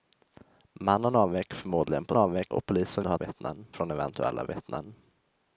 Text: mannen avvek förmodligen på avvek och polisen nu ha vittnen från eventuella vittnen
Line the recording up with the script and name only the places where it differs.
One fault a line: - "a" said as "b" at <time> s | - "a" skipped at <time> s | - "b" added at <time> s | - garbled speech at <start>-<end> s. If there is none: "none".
none